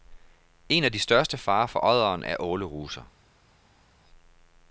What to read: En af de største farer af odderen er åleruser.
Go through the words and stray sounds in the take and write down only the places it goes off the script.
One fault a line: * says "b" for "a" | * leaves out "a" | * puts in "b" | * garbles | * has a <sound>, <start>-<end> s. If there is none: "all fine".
* says "for" for "af"